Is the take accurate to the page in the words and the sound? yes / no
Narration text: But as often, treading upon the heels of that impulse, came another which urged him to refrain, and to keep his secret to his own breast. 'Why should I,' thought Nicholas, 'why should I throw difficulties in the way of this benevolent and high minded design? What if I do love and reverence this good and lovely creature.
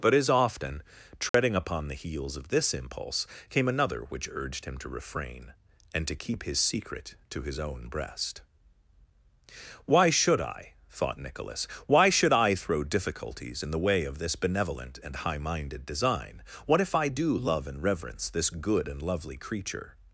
no